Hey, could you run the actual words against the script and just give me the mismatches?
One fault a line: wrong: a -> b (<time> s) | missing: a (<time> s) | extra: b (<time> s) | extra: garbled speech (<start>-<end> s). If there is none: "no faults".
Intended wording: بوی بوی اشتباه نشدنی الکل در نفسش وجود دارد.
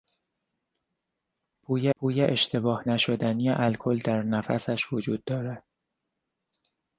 no faults